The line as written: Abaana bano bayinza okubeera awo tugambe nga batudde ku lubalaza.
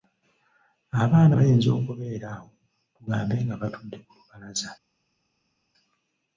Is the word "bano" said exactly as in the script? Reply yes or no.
no